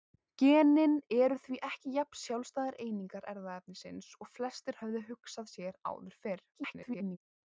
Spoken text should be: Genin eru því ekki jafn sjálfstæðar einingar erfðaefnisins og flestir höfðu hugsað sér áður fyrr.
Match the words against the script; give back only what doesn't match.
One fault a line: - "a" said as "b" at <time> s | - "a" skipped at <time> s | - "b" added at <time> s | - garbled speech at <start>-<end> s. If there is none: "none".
- garbled speech at 6.5-7.2 s